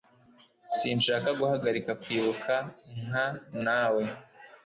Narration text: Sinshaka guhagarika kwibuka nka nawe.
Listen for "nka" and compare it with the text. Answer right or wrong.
right